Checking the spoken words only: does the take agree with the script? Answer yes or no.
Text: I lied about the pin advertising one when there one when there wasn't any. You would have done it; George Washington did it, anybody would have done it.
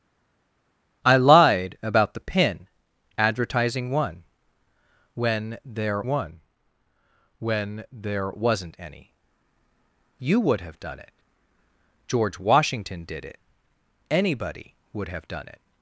yes